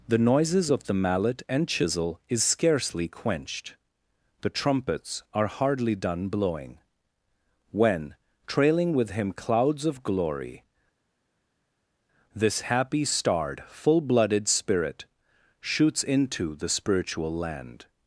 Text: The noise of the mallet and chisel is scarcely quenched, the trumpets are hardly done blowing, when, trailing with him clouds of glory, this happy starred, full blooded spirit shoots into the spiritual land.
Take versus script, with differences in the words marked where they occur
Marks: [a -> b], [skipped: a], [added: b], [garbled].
The [noise -> noises] of the mallet and chisel is scarcely quenched, the trumpets are hardly done blowing, when, trailing with him clouds of glory, this happy starred, full blooded spirit shoots into the spiritual land.